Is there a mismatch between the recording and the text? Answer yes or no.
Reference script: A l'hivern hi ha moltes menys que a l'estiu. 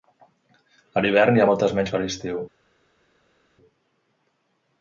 no